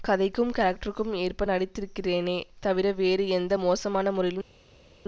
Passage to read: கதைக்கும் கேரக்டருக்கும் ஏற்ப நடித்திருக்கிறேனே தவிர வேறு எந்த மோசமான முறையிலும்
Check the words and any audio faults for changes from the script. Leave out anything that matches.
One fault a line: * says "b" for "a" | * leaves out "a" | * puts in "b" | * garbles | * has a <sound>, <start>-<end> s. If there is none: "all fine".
all fine